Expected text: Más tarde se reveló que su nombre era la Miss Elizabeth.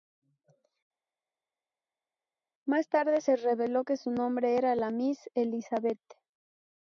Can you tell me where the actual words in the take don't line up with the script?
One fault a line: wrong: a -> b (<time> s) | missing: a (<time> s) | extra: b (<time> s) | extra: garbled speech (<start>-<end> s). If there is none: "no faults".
no faults